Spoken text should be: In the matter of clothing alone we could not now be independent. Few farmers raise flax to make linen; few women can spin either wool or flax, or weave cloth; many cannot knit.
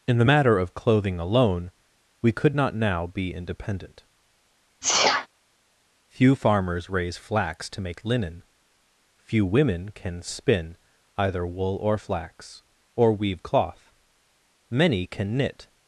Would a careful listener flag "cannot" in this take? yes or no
yes